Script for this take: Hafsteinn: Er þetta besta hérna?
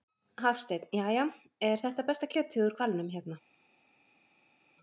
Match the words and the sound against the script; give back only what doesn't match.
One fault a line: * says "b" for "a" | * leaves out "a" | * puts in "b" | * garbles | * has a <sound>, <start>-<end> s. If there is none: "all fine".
* puts in "Jæja"
* puts in "kjötið úr hvalnum"